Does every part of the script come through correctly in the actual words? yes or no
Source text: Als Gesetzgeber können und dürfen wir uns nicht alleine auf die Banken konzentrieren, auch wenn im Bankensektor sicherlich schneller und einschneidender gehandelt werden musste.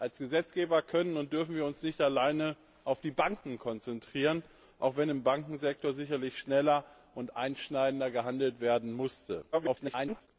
no